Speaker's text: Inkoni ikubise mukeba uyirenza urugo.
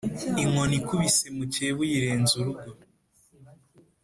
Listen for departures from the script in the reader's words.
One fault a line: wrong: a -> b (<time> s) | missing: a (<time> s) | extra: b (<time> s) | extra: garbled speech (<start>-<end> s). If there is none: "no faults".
no faults